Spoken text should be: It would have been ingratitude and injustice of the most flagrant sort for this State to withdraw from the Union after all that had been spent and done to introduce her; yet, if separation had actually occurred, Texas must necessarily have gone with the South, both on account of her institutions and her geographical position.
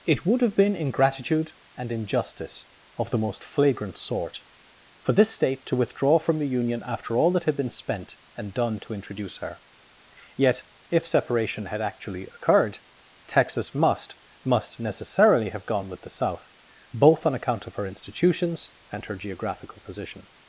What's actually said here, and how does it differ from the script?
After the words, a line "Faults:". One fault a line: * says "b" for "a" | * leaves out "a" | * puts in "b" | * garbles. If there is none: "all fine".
It would have been ingratitude and injustice of the most flagrant sort for this State to withdraw from the Union after all that had been spent and done to introduce her; yet, if separation had actually occurred, Texas must must necessarily have gone with the South, both on account of her institutions and her geographical position.
Faults:
* puts in "must"